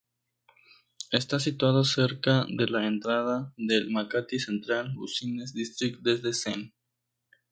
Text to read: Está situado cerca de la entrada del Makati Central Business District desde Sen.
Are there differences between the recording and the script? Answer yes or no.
no